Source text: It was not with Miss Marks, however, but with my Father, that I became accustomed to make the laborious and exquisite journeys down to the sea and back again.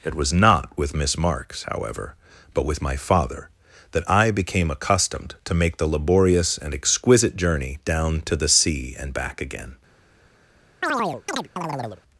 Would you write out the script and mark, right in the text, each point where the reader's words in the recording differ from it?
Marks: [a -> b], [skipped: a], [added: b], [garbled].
It was not with Miss Marks, however, but with my Father, that I became accustomed to make the laborious and exquisite [journeys -> journey] down to the sea and back again.